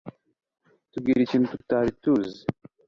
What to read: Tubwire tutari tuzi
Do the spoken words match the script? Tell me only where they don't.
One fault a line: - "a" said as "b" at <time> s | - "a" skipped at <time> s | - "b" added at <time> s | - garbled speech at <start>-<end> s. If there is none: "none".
- "ikintu" added at 1.2 s